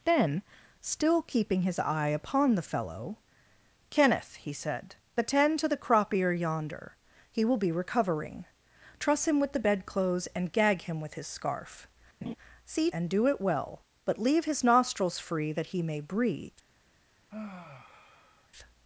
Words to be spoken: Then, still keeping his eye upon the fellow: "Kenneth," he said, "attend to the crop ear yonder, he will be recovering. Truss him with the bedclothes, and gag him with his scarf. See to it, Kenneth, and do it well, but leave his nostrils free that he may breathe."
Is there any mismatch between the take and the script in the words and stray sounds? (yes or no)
yes